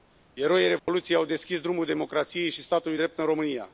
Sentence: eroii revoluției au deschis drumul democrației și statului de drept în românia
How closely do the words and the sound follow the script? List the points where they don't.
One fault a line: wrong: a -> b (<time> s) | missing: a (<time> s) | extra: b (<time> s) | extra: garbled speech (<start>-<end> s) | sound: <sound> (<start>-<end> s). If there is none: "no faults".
sound: dropout (0.8-0.9 s)
missing: de (3.0 s)